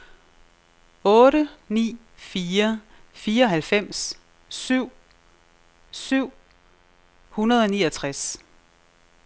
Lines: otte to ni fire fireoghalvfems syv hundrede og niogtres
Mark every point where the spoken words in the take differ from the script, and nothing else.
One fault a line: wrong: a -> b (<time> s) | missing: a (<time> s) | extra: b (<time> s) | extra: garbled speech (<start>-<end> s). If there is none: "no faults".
missing: to (1.5 s)
extra: syv (5.9 s)